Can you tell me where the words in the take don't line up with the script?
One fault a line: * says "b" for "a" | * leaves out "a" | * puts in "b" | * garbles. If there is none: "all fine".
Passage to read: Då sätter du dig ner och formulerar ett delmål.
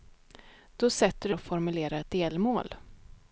* leaves out "dig ner"